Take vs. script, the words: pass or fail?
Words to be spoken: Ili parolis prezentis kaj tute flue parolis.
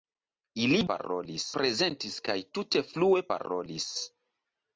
pass